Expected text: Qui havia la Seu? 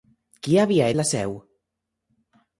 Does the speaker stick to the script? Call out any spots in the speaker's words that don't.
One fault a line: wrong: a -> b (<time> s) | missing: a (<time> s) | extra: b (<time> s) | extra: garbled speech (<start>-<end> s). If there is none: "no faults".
no faults